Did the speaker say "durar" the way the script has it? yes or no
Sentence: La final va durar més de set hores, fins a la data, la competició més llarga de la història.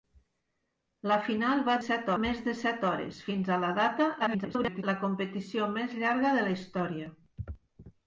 no